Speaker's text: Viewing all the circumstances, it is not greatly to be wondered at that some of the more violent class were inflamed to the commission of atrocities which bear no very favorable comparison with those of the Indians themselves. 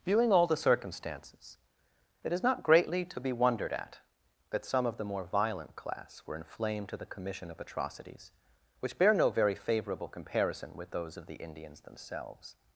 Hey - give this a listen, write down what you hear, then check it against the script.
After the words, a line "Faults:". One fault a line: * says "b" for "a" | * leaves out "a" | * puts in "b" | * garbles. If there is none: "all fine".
Viewing all the circumstances, it is not greatly to be wondered at that some of the more violent class were inflamed to the commission of atrocities which bear no very favorable comparison with those of the Indians themselves.
Faults:
all fine